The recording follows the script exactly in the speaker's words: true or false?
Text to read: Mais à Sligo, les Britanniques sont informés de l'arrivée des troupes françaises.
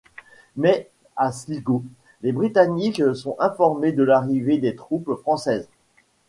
true